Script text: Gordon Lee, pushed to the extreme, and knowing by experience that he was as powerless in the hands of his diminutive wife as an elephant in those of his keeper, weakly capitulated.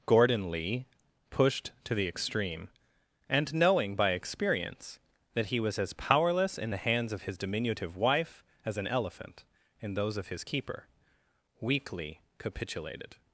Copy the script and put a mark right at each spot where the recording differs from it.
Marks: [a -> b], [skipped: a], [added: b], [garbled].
Gordon Lee, pushed to the extreme, and knowing by experience that he was as powerless in the hands of his diminutive wife as an elephant in those of his keeper, weakly capitulated.